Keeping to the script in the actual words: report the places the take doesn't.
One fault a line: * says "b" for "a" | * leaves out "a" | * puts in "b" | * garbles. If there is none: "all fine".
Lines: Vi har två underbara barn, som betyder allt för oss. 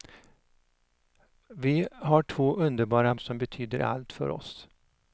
* leaves out "barn"